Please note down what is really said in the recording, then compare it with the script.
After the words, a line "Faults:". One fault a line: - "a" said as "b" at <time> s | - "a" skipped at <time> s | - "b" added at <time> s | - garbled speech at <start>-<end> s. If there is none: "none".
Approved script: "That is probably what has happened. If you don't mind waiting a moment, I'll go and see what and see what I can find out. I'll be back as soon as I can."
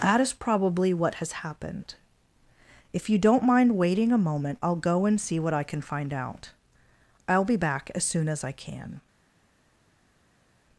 "That is probably what has happened. If you don't mind waiting a moment, I'll go and see what I can find out. I'll be back as soon as I can."
Faults:
- "and see what" skipped at 5.5 s